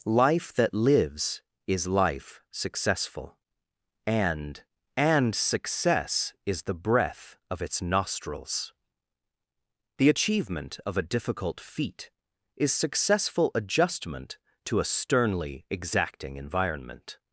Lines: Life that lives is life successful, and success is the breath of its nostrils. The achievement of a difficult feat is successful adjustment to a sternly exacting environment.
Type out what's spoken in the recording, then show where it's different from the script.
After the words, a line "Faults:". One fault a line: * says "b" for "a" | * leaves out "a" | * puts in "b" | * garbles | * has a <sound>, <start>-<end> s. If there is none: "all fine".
Life that lives is life successful, and and success is the breath of its nostrils. The achievement of a difficult feat is successful adjustment to a sternly exacting environment.
Faults:
* puts in "and"